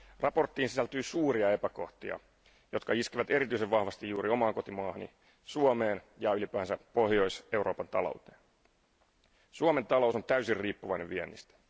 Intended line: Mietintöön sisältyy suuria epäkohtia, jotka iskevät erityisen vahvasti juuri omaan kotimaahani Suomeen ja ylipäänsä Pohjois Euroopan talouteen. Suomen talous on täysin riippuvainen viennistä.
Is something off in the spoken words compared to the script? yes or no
no